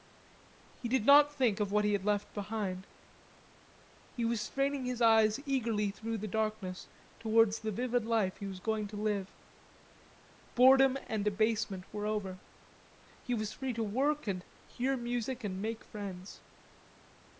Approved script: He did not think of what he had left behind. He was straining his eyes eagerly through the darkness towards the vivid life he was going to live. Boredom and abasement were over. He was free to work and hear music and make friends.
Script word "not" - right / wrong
right